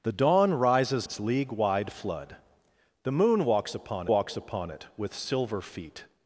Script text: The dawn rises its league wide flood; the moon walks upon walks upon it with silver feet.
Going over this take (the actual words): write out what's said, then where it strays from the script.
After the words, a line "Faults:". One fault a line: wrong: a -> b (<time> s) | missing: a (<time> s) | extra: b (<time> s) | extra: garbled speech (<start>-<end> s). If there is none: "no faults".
The dawn rises its league wide flood; the moon walks upon walks upon it with silver feet.
Faults:
no faults